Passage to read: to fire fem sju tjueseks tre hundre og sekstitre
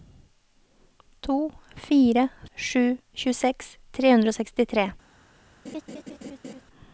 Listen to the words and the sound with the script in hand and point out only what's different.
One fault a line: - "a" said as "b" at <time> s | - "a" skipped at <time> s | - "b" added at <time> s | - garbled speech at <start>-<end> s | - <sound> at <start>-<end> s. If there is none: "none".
- "fem" skipped at 2.3 s
- laugh at 5.6-6.6 s